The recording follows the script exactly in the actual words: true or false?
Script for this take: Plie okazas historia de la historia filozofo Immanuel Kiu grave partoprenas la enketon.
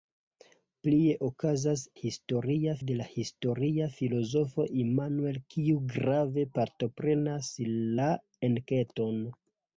true